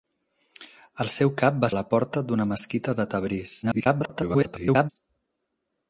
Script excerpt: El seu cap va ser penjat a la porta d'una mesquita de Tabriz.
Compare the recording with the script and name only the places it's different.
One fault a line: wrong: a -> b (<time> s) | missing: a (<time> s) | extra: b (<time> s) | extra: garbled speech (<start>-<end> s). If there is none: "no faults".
missing: ser penjat (1.7 s)
extra: garbled speech (3.6-4.9 s)